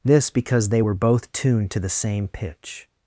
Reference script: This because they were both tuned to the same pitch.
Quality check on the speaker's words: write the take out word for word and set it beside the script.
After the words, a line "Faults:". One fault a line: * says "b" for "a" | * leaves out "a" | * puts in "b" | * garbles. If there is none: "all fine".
This because they were both tuned to the same pitch.
Faults:
all fine